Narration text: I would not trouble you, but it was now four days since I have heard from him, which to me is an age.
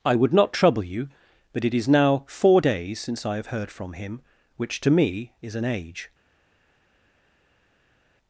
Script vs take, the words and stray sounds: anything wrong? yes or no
yes